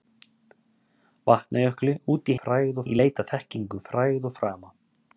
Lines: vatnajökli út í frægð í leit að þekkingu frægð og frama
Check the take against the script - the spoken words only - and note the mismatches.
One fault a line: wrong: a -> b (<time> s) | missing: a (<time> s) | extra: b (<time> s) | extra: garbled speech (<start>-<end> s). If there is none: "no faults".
no faults